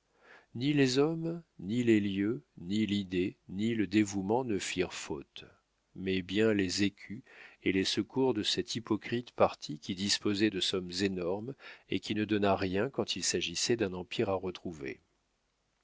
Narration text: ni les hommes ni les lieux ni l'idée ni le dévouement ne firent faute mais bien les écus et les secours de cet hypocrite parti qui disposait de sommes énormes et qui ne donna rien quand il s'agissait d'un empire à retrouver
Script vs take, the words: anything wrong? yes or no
no